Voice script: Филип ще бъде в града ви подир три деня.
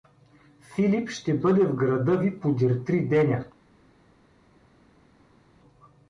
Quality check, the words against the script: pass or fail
pass